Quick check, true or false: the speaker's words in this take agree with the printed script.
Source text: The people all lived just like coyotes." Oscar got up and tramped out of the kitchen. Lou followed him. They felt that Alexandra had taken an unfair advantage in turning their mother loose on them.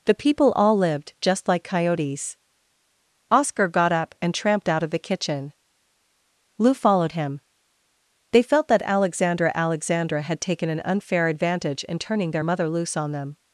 false